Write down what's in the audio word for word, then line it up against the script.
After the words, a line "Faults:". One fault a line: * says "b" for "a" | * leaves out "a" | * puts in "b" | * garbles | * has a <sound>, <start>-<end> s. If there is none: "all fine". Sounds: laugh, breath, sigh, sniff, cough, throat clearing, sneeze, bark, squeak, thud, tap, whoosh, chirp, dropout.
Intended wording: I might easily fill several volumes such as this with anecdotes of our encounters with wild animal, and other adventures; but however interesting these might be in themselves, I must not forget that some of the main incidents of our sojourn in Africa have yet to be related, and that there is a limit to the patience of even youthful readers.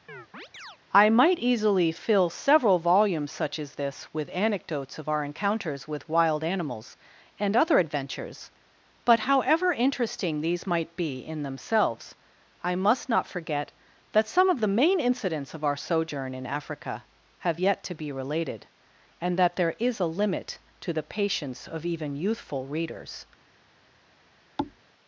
I might easily fill several volumes such as this with anecdotes of our encounters with wild animals, and other adventures; but however interesting these might be in themselves, I must not forget that some of the main incidents of our sojourn in Africa have yet to be related, and that there is a limit to the patience of even youthful readers.
Faults:
* has a chirp, 0.1-0.8 s
* says "animals" for "animal"
* has a thud, 24.6-24.8 s